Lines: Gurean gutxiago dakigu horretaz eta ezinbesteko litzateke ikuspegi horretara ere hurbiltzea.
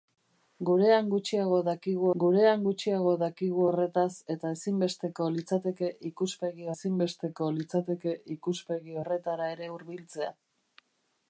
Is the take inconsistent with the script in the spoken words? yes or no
yes